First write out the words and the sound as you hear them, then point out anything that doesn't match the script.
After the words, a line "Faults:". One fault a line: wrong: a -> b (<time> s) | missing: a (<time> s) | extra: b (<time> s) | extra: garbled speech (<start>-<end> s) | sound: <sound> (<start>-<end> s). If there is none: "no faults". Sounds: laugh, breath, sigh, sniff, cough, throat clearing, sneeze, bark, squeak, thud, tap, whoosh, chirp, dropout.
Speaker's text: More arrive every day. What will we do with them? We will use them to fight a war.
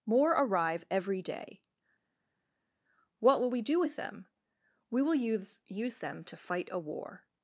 More arrive every day. What will we do with them? We will use use them to fight a war.
Faults:
extra: use (5.7 s)